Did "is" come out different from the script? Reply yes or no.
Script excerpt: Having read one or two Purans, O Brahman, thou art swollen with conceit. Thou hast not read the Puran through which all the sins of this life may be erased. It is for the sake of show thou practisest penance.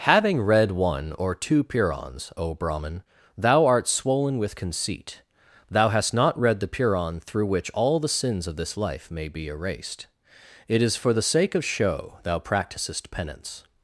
no